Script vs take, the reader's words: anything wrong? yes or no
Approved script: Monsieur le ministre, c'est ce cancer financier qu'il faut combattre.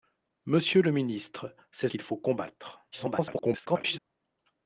yes